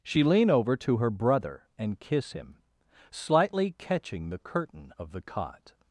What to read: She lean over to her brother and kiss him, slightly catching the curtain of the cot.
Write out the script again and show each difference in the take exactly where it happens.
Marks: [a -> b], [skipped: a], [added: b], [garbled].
She lean over to her brother and kiss him, slightly catching the curtain of the cot.